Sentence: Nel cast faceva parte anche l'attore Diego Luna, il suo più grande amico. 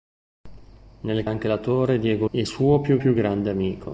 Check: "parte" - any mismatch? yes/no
yes